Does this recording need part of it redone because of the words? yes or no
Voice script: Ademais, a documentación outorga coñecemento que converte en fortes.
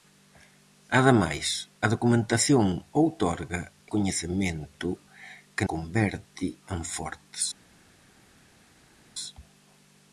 no